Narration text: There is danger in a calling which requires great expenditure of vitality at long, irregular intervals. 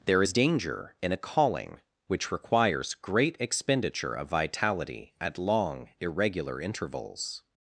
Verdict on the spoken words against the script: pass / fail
pass